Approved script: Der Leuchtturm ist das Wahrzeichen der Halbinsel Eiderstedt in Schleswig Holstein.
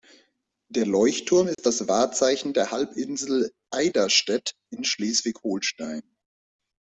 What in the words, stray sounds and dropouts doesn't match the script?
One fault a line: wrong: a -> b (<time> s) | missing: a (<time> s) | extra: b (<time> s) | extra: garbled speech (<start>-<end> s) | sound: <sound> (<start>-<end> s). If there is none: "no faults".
sound: dropout (1.5-1.6 s)